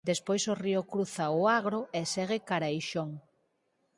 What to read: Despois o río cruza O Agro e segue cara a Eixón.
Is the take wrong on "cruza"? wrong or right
right